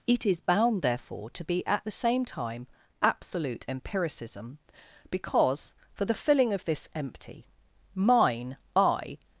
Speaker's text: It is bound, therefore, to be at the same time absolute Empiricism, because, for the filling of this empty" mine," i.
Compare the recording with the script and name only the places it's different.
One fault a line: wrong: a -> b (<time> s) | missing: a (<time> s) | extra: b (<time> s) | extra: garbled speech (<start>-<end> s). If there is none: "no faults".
no faults